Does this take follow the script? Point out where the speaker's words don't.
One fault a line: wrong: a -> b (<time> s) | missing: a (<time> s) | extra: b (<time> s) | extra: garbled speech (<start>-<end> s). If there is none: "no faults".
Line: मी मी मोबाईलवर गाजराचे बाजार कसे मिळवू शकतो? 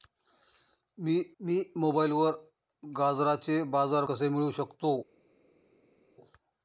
no faults